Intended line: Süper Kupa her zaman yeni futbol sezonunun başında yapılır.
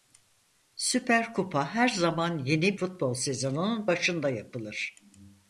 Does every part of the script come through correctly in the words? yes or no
yes